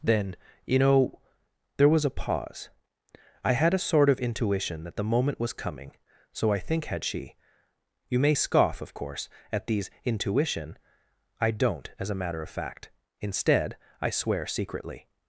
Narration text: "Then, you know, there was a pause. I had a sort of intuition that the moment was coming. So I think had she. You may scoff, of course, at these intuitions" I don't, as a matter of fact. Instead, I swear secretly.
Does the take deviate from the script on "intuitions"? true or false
true